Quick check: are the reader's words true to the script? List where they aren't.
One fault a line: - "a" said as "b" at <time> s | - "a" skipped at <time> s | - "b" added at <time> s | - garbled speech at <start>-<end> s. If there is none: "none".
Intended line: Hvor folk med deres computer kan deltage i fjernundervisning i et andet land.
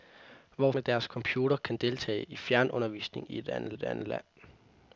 - "folk" skipped at 0.7 s
- "et andet" added at 3.7 s